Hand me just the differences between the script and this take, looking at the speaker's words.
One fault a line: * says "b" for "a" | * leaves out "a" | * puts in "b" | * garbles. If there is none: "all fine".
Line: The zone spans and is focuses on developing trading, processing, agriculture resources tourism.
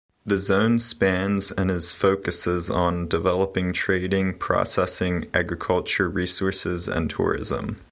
* puts in "and"